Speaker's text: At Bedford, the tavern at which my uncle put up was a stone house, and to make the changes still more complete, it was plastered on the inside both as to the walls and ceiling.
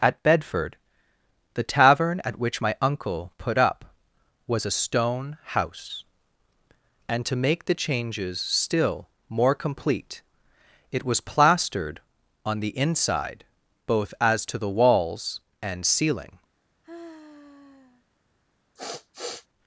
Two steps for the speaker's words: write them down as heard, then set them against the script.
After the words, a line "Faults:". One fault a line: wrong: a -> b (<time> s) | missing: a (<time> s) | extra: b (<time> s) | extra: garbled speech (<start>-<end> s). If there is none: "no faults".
At Bedford, the tavern at which my uncle put up was a stone house, and to make the changes still more complete, it was plastered on the inside both as to the walls and ceiling.
Faults:
no faults